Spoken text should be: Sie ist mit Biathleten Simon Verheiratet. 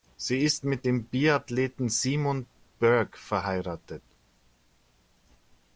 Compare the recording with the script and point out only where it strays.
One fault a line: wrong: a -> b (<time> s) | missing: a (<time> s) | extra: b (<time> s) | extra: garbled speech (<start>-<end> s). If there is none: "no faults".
extra: dem (0.8 s)
extra: Burke (2.8 s)